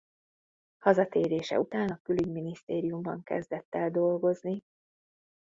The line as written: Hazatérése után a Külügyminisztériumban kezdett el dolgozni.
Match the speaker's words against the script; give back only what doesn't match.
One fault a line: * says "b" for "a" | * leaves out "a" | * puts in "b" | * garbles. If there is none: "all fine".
all fine